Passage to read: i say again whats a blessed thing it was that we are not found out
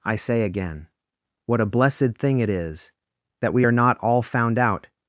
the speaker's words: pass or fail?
fail